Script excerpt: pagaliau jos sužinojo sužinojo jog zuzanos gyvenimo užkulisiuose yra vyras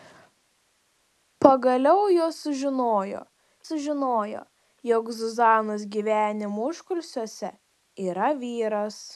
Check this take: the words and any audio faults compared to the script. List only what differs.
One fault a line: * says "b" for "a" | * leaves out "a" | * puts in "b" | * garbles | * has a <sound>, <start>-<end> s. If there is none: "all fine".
all fine